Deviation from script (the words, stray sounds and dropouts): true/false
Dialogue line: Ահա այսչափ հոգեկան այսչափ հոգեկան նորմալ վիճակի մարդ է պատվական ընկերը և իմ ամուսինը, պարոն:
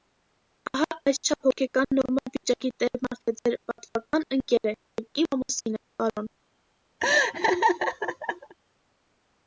true